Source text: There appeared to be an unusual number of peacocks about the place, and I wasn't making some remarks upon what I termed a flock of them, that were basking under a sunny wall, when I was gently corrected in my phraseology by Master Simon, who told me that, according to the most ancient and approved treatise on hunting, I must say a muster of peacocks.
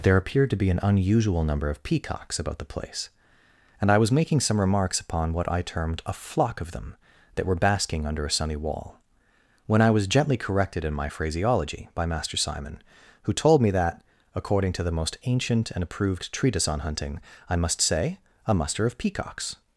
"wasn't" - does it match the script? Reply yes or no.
no